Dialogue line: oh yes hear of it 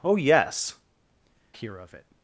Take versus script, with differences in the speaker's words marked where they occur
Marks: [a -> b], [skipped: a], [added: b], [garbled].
oh yes hear of it